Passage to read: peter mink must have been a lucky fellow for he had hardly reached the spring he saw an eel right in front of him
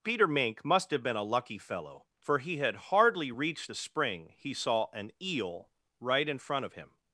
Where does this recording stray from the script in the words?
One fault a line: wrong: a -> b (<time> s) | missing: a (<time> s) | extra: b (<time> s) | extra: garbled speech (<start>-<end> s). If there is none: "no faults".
no faults